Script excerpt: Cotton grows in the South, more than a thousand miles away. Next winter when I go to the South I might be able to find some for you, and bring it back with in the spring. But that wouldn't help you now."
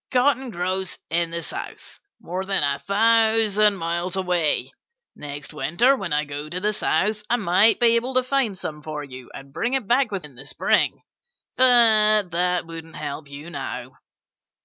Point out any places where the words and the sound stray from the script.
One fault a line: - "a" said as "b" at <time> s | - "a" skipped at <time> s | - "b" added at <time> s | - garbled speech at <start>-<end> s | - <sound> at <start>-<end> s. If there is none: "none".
none